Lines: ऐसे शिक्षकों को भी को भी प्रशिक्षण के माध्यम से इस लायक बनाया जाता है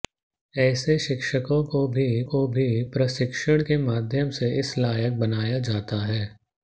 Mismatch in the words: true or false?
false